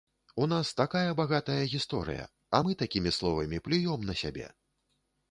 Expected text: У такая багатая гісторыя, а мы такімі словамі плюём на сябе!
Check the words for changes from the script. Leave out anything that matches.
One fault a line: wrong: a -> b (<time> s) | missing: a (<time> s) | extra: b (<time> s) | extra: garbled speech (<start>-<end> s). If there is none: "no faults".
extra: нас (0.5 s)